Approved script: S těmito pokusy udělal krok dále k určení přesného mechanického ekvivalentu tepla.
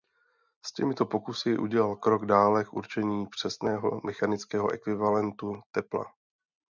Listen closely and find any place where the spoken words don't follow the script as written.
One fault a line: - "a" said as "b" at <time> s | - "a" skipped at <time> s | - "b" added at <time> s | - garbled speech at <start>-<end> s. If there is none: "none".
none